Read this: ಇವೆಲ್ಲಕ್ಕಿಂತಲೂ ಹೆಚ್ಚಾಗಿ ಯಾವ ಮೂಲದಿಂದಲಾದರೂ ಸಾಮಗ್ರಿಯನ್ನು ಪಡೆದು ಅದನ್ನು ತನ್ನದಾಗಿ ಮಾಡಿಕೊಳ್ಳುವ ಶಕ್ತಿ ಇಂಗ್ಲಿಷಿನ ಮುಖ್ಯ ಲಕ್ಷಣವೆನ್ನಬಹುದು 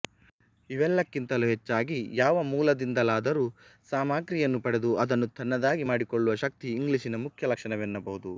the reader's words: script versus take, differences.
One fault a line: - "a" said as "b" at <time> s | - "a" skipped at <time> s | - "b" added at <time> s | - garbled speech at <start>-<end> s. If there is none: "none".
none